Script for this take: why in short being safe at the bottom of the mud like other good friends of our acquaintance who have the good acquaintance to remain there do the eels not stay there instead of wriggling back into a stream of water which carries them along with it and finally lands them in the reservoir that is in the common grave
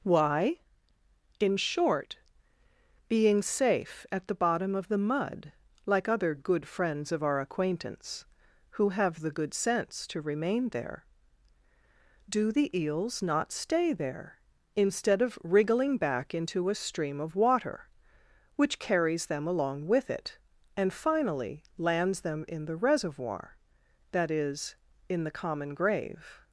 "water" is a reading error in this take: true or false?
false